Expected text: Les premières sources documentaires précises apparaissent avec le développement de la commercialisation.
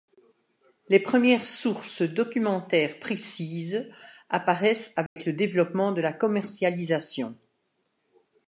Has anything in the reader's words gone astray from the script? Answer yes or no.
no